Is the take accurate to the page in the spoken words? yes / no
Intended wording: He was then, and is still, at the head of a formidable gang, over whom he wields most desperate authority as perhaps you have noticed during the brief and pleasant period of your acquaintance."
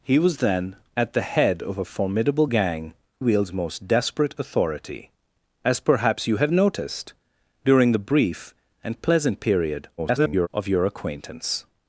no